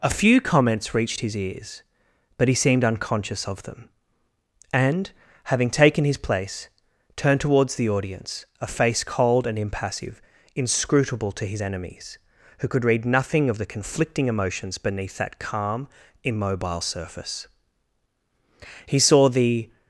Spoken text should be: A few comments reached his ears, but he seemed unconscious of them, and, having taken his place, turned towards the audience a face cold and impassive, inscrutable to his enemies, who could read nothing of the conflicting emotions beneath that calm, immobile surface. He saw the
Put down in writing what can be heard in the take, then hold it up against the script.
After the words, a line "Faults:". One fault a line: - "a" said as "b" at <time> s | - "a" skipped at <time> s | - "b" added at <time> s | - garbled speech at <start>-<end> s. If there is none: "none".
A few comments reached his ears, but he seemed unconscious of them, and, having taken his place, turned towards the audience a face cold and impassive, inscrutable to his enemies, who could read nothing of the conflicting emotions beneath that calm, immobile surface. He saw the
Faults:
none